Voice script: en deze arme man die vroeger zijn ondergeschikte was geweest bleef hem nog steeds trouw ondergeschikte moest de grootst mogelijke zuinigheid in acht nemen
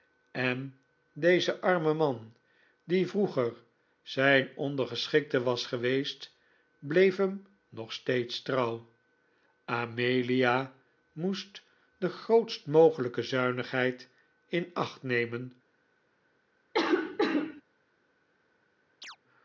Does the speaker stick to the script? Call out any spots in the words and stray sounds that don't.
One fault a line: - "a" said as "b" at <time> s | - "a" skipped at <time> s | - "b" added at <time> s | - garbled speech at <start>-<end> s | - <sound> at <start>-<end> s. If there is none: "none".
- "ondergeschikte" said as "amelia" at 9.7 s
- cough at 16.7-17.6 s
- chirp at 19.0-19.2 s